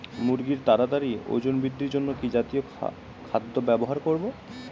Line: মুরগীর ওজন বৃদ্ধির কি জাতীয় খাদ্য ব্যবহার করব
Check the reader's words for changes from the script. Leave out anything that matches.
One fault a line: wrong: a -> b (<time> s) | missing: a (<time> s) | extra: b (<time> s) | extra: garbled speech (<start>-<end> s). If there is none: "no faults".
extra: তাড়াতাড়ি (0.7 s)
extra: জন্য (1.9 s)